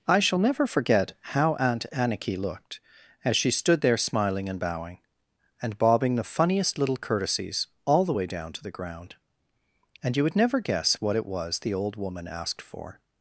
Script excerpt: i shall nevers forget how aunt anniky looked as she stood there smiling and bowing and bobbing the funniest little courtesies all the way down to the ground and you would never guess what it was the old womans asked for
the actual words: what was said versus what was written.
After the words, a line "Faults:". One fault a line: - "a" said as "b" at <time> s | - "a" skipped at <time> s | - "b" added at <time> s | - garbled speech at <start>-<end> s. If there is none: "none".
i shall never forget how aunt anniky looked as she stood there smiling and bowing and bobbing the funniest little courtesies all the way down to the ground and you would never guess what it was the old woman asked for
Faults:
- "nevers" said as "never" at 0.4 s
- "womans" said as "woman" at 11.9 s